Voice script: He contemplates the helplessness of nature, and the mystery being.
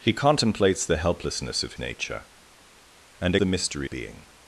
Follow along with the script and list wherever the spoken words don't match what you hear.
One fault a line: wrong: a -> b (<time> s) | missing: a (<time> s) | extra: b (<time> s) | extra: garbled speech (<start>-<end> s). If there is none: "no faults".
no faults